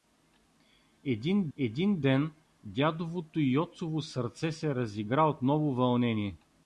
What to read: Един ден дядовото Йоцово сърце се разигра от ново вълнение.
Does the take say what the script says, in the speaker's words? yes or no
no